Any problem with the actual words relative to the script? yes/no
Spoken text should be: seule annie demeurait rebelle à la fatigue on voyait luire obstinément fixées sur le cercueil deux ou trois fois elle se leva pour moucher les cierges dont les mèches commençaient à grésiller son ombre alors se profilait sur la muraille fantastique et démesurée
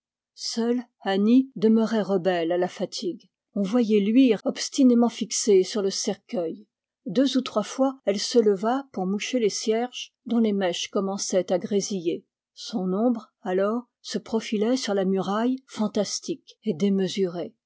no